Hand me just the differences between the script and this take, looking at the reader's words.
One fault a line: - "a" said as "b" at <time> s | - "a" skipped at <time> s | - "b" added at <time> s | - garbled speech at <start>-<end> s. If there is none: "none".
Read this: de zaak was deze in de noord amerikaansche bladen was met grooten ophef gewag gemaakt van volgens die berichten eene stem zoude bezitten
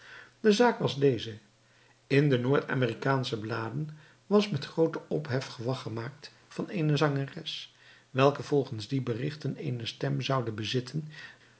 - "eene zangeres welke" added at 6.7 s